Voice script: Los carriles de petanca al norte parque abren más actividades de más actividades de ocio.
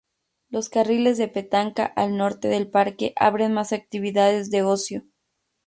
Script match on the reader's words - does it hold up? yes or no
no